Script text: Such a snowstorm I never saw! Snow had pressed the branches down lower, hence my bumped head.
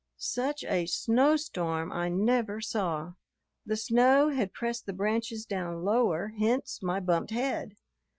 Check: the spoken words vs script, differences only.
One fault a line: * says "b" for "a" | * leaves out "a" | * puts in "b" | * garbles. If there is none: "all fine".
* puts in "The"